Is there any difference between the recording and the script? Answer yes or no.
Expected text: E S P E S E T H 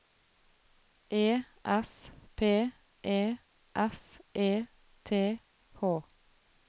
no